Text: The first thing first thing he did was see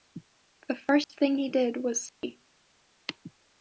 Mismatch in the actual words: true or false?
true